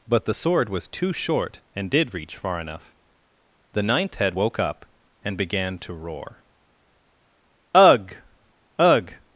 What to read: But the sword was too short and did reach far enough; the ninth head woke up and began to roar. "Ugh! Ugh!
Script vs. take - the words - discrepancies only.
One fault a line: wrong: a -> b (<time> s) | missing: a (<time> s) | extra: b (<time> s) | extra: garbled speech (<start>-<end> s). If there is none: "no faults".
no faults